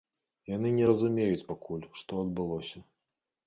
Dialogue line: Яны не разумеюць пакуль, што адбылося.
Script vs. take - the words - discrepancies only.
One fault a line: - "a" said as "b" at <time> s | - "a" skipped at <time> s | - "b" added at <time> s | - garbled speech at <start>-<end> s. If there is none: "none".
none